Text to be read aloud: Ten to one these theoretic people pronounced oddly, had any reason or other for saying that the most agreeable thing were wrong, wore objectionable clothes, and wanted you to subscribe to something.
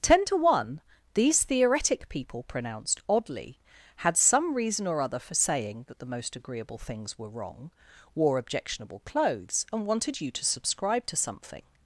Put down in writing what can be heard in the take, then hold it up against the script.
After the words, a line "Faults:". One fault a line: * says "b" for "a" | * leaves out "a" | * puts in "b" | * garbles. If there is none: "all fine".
Ten to one these theoretic people pronounced oddly, had some reason or other for saying that the most agreeable things were wrong, wore objectionable clothes, and wanted you to subscribe to something.
Faults:
* says "some" for "any"
* says "things" for "thing"